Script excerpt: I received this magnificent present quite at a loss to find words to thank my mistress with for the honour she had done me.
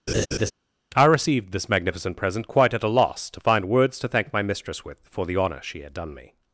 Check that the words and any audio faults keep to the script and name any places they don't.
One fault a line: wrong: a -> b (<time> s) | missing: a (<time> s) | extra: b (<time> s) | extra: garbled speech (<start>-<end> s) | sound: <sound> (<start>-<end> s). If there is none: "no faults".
sound: laugh (0.1-0.5 s)